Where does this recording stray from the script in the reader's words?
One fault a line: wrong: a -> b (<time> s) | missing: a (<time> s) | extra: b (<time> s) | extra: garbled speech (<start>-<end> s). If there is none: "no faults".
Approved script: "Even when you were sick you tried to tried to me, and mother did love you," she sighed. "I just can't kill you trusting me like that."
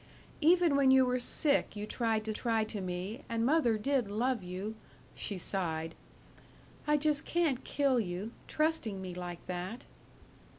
no faults